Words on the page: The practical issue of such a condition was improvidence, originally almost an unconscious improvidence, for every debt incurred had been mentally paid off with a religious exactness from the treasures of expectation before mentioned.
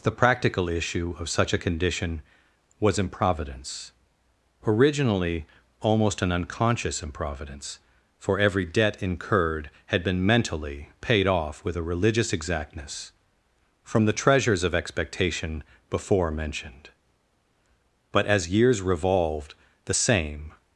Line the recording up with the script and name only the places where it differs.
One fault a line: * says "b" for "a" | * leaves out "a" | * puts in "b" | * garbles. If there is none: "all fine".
* puts in "But as years revolved the same"